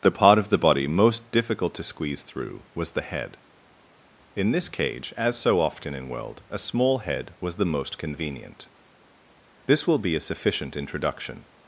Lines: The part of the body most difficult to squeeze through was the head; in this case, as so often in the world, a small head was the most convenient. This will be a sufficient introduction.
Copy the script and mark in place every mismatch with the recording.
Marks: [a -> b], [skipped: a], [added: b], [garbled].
The part of the body most difficult to squeeze through was the head; in this [case, -> cage] as so often in [skipped: the] world, a small head was the most convenient. This will be a sufficient introduction.